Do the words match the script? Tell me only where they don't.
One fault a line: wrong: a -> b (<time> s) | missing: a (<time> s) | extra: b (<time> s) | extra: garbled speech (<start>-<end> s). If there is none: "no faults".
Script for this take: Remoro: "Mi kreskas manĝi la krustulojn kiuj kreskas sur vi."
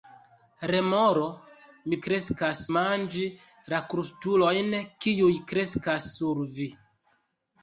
no faults